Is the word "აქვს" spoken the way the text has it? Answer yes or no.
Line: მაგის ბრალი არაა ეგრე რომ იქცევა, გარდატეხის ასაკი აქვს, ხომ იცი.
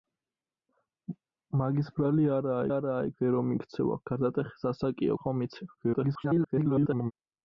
no